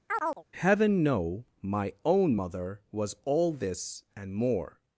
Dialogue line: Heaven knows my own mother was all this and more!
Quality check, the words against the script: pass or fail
fail